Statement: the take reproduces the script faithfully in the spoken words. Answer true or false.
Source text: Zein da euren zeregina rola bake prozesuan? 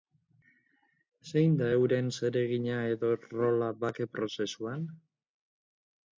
false